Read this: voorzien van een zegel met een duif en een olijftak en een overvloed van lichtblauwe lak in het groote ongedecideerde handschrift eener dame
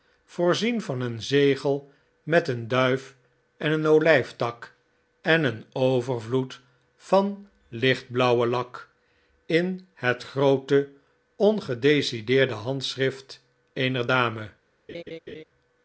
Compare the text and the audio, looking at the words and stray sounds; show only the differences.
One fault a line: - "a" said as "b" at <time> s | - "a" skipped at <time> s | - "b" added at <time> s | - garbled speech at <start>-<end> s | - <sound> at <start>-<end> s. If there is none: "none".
- laugh at 14.9-15.4 s